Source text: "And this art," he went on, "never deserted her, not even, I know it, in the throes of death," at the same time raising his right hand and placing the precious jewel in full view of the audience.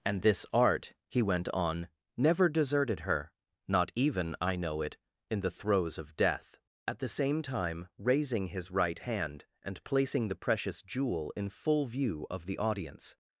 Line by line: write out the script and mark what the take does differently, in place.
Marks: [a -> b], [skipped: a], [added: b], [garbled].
"And this art," he went on, "never deserted her, not even, I know it, in the throes of death," at the same time raising his right hand and placing the precious jewel in full view of the audience.